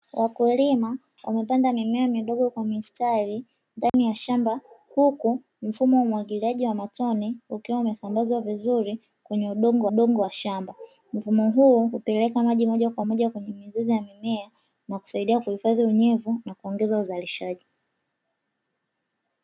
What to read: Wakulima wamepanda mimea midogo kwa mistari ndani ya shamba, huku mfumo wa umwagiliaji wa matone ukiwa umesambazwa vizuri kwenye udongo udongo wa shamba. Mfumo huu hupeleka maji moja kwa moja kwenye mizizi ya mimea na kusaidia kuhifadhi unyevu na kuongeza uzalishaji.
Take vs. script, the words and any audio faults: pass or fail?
fail